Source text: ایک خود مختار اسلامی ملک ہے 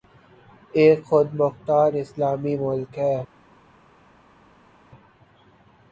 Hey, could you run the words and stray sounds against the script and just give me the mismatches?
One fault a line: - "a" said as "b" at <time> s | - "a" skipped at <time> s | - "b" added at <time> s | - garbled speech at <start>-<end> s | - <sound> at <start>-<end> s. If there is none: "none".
none